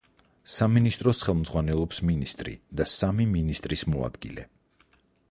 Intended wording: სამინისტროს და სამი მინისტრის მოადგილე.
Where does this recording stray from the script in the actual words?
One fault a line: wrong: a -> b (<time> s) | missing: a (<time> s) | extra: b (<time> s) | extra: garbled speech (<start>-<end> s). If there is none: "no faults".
extra: ხელმძღვანელობს მინისტრი (1.2 s)